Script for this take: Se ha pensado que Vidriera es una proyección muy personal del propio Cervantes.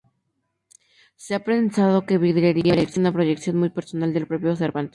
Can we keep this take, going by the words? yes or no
yes